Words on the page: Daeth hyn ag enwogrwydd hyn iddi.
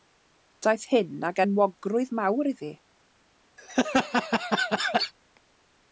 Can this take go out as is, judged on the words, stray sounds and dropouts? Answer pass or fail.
fail